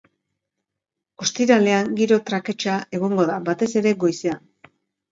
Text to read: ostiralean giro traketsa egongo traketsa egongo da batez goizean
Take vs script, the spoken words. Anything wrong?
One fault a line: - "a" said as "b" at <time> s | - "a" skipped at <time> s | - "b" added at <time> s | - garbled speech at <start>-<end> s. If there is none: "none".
- "traketsa egongo" skipped at 3.3 s
- "ere" added at 3.9 s